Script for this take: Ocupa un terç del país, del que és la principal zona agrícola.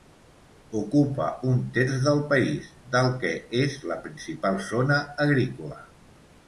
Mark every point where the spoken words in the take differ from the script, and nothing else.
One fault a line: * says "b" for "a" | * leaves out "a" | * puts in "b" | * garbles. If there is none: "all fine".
all fine